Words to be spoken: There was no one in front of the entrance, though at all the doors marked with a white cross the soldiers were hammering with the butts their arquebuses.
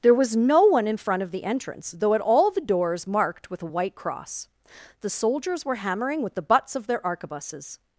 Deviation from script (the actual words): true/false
true